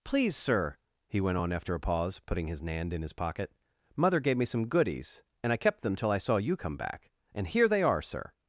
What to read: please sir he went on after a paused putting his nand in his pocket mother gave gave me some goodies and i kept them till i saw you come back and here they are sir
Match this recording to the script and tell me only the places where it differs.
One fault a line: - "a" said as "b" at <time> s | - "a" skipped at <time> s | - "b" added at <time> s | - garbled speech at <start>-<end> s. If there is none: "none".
- "paused" said as "pause" at 1.8 s
- "gave" skipped at 4.4 s